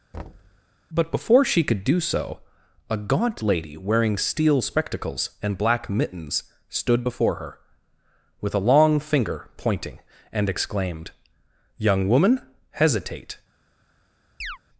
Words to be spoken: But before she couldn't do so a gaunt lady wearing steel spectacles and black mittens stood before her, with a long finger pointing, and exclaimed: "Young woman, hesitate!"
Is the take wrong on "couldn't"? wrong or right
wrong